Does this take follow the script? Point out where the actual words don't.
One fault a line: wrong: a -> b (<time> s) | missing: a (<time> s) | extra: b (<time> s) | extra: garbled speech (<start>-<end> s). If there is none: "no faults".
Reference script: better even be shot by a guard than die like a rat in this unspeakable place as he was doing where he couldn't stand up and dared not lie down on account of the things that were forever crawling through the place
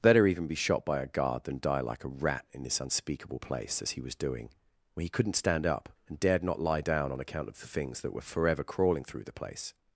no faults